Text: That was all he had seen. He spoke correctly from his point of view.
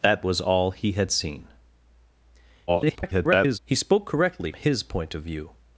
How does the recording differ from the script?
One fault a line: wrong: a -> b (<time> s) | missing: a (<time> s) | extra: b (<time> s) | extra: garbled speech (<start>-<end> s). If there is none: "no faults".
extra: garbled speech (2.7-3.6 s)
missing: from (4.5 s)